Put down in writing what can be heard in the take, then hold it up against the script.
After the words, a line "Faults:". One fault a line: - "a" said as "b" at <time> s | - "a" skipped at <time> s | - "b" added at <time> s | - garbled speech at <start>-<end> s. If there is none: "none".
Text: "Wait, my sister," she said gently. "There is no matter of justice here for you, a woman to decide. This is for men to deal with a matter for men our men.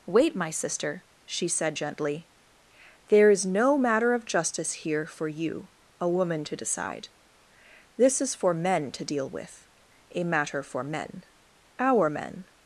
"Wait, my sister," she said gently. "There is no matter of justice here for you, a woman to decide. This is for men to deal with a matter for men our men.
Faults:
none